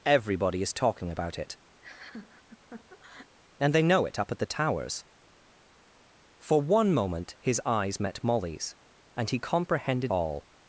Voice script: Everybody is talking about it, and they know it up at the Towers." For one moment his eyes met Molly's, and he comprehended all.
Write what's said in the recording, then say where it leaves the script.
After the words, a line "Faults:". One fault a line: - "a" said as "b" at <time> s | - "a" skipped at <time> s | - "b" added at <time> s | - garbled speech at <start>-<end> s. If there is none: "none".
Everybody is talking about it, and they know it up at the Towers." For one moment his eyes met Molly's, and he comprehended all.
Faults:
none